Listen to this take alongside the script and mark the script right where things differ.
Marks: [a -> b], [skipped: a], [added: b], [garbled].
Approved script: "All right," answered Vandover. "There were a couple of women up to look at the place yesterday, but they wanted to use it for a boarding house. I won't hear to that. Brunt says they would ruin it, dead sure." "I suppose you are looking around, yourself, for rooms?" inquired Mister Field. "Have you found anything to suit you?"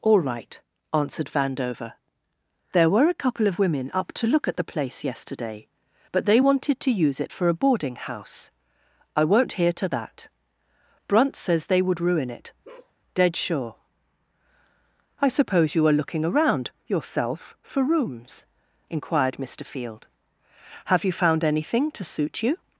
"All right," answered Vandover. "There were a couple of women up to look at the place yesterday, but they wanted to use it for a boarding house. I won't hear to that. Brunt says they would ruin it, dead sure." "I suppose you are looking around, yourself, for rooms?" inquired Mister Field. "Have you found anything to suit you?"